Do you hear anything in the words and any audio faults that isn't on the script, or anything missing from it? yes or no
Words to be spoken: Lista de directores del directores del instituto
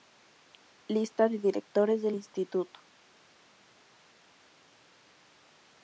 yes